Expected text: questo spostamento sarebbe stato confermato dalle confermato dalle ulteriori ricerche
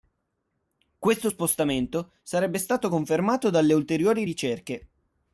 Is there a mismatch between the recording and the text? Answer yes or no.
yes